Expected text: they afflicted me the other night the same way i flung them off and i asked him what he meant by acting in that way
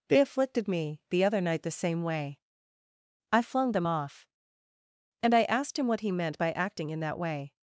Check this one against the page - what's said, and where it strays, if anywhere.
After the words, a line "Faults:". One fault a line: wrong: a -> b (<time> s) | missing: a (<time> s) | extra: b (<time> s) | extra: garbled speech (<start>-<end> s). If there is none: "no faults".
they afflicted me the other night the same way i flung them off and i asked him what he meant by acting in that way
Faults:
no faults